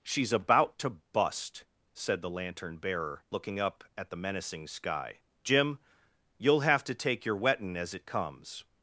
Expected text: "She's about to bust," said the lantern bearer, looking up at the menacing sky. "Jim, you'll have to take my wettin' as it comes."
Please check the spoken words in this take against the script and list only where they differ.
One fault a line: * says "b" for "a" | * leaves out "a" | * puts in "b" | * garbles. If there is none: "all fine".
* says "your" for "my"